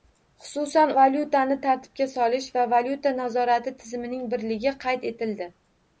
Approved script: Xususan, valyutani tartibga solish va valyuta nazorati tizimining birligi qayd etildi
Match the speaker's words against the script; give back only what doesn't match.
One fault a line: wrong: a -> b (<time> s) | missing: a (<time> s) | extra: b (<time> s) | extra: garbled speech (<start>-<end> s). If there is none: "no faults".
no faults